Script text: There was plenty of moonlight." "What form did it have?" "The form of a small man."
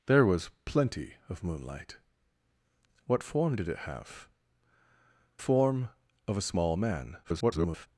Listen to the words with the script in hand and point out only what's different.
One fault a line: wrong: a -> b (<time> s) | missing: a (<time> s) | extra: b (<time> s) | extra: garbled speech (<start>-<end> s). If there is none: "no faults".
missing: The (4.3 s)
extra: garbled speech (7.2-7.9 s)